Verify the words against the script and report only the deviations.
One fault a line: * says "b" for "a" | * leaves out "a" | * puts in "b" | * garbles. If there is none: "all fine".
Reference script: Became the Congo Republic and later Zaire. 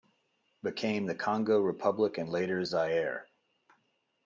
all fine